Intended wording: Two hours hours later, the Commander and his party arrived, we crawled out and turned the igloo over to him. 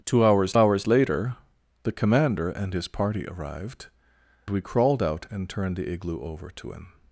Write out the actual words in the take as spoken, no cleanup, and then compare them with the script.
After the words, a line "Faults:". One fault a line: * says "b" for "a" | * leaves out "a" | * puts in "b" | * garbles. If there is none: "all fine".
Two hours hours later, the Commander and his party arrived, we crawled out and turned the igloo over to him.
Faults:
all fine